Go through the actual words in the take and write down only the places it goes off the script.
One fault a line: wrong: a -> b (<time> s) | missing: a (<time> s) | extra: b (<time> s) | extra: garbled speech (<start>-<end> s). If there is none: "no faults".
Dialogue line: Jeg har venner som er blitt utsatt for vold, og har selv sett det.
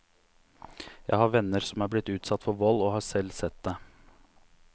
no faults